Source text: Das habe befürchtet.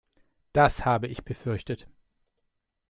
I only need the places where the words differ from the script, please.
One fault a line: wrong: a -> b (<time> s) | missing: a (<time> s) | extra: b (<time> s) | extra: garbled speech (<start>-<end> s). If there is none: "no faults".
extra: ich (1.0 s)